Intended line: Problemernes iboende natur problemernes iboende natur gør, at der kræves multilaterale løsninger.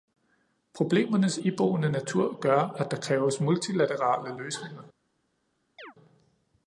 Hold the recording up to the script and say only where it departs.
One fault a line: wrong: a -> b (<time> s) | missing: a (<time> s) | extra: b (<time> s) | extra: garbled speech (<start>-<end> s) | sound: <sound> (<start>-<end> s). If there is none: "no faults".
missing: problemernes iboende natur (2.4 s)
sound: chirp (5.8-5.9 s)